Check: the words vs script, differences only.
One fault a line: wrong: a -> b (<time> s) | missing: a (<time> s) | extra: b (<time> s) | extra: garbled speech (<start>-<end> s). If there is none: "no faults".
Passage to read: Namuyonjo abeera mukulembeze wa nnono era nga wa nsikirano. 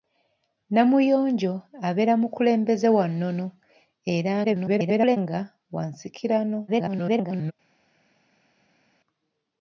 extra: garbled speech (4.4-5.2 s)
extra: garbled speech (6.7-7.5 s)